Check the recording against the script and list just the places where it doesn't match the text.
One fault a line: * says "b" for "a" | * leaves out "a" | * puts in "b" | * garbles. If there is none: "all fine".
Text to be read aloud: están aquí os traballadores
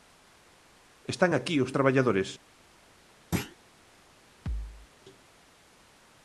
all fine